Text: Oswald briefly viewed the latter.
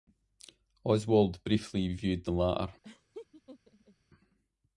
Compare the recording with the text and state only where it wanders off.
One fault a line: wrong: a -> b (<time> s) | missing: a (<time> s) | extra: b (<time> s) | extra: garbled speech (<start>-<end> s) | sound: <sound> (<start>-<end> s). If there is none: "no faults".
sound: laugh (2.8-4.0 s)